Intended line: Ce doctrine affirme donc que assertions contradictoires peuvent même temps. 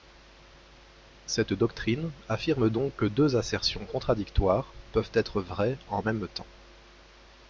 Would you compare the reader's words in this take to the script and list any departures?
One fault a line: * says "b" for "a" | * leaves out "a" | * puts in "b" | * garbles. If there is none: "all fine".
* says "Cette" for "Ce"
* puts in "deux"
* puts in "être vraies en"